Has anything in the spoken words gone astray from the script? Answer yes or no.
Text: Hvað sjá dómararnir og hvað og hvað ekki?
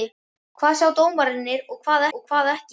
no